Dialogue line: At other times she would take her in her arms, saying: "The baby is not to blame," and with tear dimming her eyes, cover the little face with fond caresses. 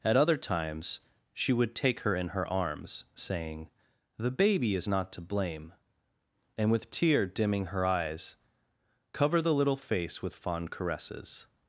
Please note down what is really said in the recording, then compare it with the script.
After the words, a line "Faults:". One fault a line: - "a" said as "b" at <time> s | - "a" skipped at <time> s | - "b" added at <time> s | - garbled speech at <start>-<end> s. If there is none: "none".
At other times she would take her in her arms, saying: "The baby is not to blame," and with tear dimming her eyes, cover the little face with fond caresses.
Faults:
none